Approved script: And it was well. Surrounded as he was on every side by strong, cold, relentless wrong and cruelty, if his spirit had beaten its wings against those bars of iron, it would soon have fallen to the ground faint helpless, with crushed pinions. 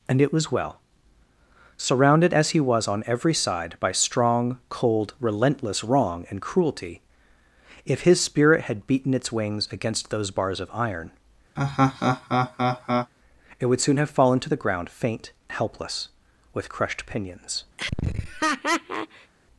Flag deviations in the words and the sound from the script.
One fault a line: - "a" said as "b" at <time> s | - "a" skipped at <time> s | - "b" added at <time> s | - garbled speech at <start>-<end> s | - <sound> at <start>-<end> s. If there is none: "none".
- laugh at 11.6-13.1 s
- laugh at 17.8-19.3 s